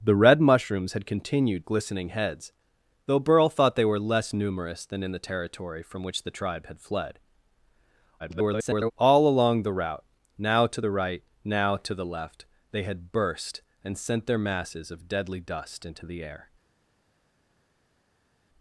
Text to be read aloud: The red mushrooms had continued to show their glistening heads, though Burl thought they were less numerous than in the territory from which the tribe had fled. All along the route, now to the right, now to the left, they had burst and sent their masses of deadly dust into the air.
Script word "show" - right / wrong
wrong